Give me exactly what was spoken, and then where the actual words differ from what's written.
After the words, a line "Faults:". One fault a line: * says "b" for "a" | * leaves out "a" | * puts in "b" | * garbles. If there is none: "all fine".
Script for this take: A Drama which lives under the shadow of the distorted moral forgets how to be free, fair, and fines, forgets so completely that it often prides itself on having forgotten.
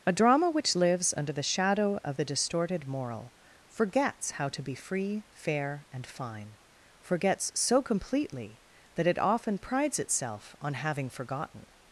A Drama which lives under the shadow of the distorted moral forgets how to be free, fair, and fine, forgets so completely that it often prides itself on having forgotten.
Faults:
* says "fine" for "fines"